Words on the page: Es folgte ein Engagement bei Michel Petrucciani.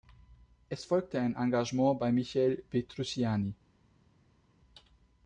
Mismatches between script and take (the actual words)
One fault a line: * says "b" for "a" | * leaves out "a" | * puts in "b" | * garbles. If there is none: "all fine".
all fine